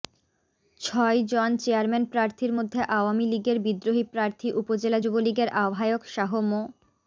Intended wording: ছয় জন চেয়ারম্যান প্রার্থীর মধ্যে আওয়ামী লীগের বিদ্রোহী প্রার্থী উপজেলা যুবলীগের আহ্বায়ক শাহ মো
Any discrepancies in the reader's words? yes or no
no